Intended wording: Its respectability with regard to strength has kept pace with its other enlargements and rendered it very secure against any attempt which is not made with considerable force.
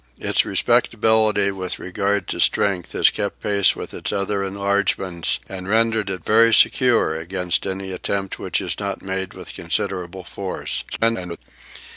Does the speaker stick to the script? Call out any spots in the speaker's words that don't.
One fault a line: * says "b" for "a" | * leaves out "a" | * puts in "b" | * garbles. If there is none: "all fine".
* garbles